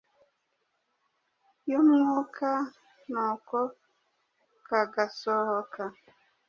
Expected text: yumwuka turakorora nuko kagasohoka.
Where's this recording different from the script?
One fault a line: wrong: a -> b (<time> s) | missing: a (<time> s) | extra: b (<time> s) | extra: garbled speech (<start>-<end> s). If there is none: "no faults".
missing: turakorora (2.5 s)